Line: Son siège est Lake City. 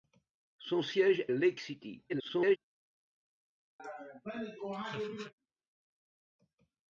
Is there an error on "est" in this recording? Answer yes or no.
yes